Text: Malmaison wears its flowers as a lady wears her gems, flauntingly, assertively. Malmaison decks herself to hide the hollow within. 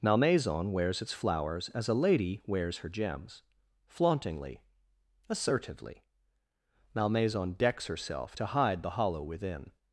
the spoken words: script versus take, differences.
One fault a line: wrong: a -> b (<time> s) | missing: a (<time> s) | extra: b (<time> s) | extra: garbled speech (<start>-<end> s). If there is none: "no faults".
no faults